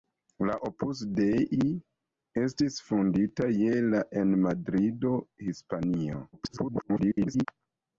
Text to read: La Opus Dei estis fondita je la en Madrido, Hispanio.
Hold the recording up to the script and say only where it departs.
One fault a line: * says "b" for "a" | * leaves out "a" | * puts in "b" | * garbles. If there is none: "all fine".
* garbles